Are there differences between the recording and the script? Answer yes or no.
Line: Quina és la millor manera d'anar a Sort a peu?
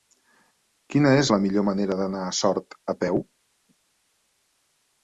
no